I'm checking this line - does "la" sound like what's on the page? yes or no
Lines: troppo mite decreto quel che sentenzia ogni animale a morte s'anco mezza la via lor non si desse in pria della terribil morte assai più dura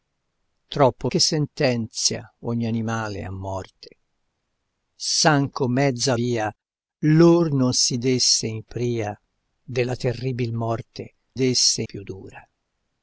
no